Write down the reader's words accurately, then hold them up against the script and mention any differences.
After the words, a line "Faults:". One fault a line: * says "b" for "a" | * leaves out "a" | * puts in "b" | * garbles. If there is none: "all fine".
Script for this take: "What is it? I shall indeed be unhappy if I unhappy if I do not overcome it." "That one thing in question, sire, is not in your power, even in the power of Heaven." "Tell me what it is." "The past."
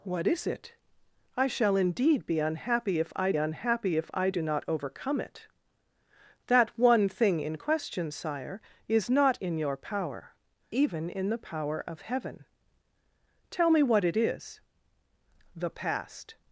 "What is it? I shall indeed be unhappy if I unhappy if I do not overcome it." "That one thing in question, sire, is not in your power, even in the power of Heaven." "Tell me what it is." "The past."
Faults:
all fine